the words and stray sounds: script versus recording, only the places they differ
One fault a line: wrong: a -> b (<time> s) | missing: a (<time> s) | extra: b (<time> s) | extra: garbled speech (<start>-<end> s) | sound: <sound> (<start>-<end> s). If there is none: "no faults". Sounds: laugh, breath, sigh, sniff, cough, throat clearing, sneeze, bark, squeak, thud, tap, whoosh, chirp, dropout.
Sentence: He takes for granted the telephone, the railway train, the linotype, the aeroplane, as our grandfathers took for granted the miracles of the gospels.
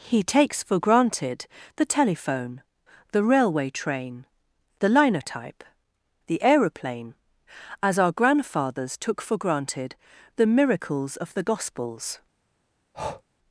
sound: breath (12.9-13.2 s)